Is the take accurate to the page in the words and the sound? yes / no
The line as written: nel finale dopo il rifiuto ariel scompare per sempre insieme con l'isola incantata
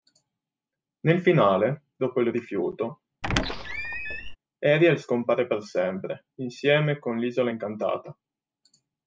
no